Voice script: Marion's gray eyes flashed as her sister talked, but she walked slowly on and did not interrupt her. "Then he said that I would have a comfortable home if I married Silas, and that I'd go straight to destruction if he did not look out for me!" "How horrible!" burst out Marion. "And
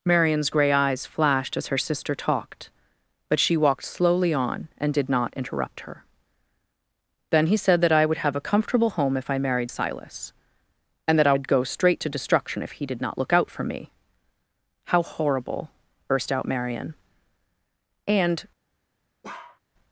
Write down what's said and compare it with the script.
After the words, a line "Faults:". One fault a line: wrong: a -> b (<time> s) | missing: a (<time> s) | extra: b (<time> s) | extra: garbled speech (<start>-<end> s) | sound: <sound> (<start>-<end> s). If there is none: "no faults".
Marion's gray eyes flashed as her sister talked, but she walked slowly on and did not interrupt her. "Then he said that I would have a comfortable home if I married Silas, and that I'd go straight to destruction if he did not look out for me!" "How horrible!" burst out Marion. "And
Faults:
sound: bark (19.2-19.6 s)